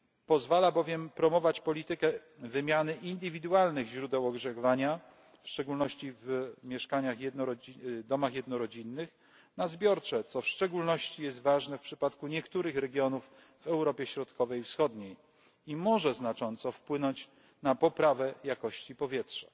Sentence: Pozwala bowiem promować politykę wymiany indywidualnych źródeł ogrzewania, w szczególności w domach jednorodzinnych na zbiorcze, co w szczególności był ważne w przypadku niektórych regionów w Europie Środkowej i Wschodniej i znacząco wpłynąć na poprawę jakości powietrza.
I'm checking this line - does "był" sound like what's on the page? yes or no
no